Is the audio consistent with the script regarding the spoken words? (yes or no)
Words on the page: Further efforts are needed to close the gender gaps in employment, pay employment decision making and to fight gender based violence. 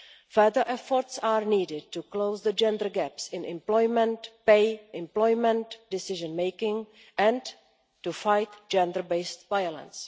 yes